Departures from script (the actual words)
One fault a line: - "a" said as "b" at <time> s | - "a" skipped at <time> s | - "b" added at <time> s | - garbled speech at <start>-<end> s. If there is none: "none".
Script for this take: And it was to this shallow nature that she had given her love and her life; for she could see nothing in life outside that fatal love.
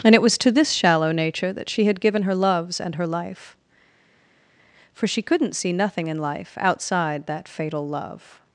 - "love" said as "loves" at 2.4 s
- "could" said as "couldn't" at 5.2 s